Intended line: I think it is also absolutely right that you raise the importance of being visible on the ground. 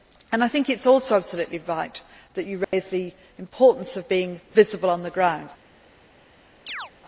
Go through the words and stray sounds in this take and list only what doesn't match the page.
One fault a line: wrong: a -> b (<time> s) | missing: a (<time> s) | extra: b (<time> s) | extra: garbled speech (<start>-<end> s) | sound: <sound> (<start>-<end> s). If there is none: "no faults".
sound: dropout (2.6-2.7 s)
sound: chirp (6.7-6.9 s)